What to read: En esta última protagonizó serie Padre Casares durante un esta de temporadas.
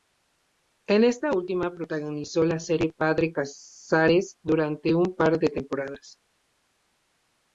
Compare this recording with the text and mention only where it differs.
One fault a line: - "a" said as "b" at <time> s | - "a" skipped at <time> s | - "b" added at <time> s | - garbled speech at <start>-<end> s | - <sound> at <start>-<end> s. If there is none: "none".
- "la" added at 2.4 s
- "esta" said as "par" at 5.2 s